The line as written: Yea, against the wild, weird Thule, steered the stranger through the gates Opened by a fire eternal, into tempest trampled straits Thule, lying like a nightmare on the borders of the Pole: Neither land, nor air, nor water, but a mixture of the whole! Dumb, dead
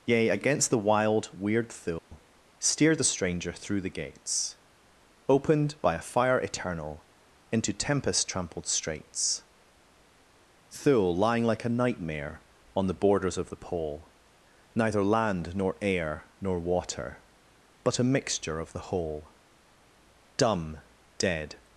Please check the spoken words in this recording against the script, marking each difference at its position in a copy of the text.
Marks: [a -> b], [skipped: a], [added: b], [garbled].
Yea, against the wild, weird Thule, steered the stranger through the gates Opened by a fire eternal, into tempest trampled straits Thule, lying like a nightmare on the borders of the Pole: Neither land, nor air, nor water, but a mixture of the whole! Dumb, dead